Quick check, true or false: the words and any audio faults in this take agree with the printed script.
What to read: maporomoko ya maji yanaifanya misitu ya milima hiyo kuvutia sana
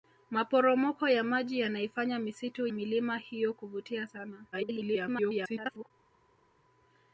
false